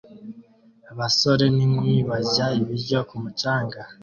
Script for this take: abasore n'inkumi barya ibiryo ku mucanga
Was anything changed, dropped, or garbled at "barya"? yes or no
no